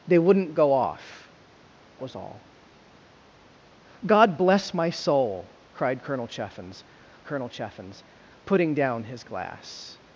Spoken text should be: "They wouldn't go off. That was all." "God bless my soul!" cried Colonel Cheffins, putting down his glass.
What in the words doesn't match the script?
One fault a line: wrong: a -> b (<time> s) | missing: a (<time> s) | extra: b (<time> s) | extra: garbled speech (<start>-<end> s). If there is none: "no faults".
missing: That (1.3 s)
extra: Colonel Cheffins (7.3 s)